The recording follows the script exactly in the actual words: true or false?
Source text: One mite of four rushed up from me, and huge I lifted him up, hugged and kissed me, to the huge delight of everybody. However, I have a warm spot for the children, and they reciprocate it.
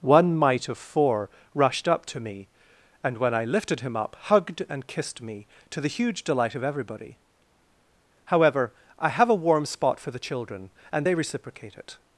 false